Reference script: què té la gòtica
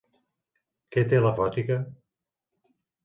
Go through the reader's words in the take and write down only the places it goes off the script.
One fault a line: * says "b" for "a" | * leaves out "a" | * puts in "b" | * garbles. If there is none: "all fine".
all fine